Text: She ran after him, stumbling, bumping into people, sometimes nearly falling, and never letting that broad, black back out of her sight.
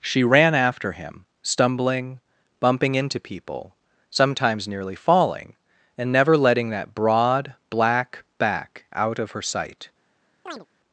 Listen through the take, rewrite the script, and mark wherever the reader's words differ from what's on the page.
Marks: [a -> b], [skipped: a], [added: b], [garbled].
She ran after him, stumbling, bumping into people, sometimes nearly falling, and never letting that broad, black back out of her sight.